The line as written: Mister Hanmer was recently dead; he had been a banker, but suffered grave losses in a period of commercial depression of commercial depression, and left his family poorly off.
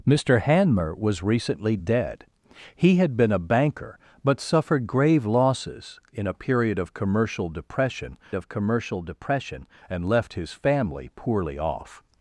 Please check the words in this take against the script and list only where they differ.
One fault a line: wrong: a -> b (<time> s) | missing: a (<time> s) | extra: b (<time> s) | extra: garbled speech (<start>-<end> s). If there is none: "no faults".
no faults